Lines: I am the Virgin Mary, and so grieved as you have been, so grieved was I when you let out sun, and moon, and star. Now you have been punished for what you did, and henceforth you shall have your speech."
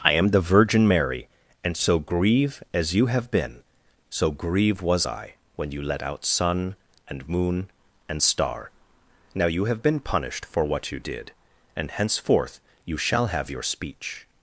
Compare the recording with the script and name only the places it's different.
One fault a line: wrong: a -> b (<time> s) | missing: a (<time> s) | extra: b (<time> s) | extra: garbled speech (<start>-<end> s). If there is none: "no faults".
wrong: grieved -> grieve (2.0 s)
wrong: grieved -> grieve (4.3 s)